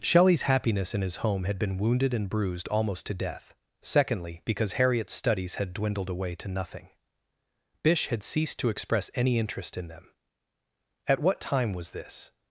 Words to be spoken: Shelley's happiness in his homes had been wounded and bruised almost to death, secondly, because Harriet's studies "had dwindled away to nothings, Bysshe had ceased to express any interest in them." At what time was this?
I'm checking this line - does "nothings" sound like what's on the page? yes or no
no